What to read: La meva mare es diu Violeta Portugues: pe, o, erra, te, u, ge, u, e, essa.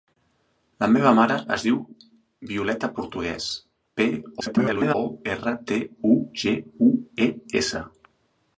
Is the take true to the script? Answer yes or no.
no